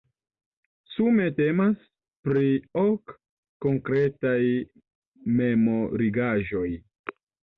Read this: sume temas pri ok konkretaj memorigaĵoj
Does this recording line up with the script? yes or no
yes